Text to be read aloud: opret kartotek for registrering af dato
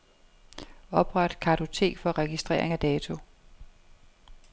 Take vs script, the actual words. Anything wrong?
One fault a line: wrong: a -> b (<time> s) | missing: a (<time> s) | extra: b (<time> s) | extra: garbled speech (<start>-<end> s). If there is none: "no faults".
no faults